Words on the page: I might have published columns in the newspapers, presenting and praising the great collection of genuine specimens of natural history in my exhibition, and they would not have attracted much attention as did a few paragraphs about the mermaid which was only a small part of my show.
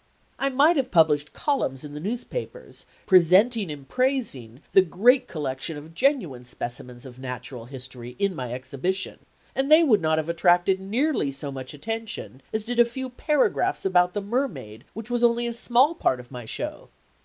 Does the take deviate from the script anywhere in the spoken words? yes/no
yes